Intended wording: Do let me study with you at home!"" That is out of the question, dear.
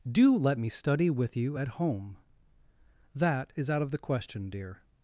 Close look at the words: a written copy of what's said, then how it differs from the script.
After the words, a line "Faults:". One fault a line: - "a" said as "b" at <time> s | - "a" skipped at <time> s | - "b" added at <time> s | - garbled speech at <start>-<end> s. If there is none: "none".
Do let me study with you at home!"" That is out of the question, dear.
Faults:
none